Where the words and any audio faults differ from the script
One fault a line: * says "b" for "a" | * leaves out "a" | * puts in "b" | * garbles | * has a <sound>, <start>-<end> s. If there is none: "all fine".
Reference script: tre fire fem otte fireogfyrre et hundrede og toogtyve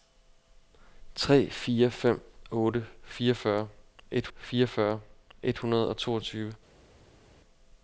* puts in "fireogfyrre et"